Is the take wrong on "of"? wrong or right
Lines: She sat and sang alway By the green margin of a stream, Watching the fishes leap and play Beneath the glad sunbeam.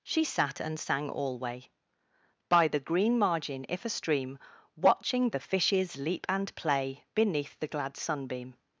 wrong